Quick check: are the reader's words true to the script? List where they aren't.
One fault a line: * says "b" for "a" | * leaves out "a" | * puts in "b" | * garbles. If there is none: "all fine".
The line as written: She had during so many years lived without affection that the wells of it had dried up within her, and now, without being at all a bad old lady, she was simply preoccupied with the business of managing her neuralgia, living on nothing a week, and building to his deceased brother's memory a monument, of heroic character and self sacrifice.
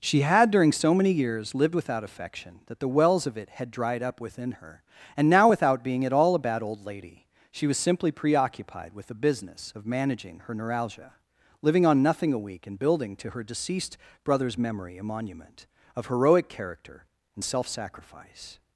* says "her" for "his"